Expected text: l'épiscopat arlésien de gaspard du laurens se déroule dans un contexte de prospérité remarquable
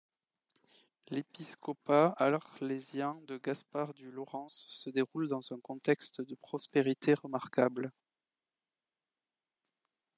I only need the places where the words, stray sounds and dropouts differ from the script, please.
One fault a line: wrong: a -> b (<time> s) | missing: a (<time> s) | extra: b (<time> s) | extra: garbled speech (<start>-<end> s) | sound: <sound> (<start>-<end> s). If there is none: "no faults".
no faults